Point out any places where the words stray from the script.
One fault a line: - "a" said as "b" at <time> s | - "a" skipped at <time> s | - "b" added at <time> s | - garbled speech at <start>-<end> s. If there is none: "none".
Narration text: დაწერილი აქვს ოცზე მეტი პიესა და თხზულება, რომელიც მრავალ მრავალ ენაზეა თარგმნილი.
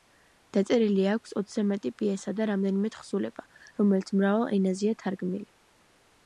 - "რამდენიმე" added at 2.5 s
- "მრავალ" skipped at 4.5 s